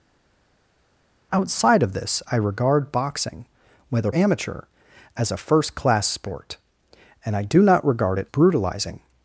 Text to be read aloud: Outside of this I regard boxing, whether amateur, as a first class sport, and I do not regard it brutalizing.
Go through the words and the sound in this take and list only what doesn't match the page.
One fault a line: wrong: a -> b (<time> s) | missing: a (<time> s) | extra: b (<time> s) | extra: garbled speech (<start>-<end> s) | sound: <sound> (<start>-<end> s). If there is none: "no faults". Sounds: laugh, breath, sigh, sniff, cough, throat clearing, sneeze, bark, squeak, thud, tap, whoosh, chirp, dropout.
no faults